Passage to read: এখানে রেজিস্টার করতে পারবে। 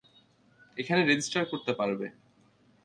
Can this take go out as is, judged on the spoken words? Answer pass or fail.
pass